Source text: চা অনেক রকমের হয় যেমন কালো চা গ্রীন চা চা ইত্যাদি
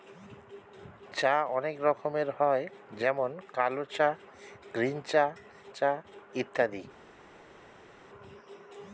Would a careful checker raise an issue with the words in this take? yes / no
no